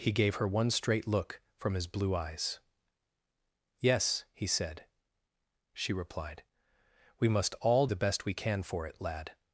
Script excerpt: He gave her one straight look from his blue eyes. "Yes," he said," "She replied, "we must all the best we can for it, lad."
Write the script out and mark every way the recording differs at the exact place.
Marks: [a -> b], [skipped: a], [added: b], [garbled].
He gave her one straight look from his blue eyes. "Yes," he said," "She replied, "we must all the best we can for it, lad."